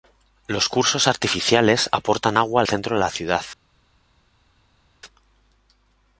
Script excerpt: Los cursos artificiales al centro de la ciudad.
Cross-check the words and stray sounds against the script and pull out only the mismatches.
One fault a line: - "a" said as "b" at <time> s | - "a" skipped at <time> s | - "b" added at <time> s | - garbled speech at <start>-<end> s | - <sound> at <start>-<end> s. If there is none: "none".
- "aportan agua" added at 1.9 s